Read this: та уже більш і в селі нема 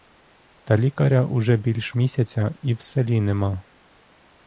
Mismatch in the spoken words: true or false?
true